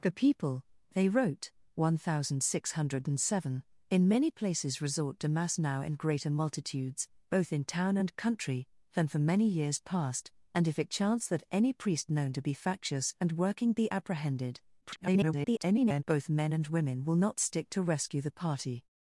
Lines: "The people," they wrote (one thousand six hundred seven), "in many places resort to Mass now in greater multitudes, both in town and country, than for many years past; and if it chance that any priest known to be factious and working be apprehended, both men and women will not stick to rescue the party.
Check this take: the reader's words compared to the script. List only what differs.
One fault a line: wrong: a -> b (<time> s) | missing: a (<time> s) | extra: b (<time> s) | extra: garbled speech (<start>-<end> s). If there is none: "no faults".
extra: garbled speech (14.8-16.0 s)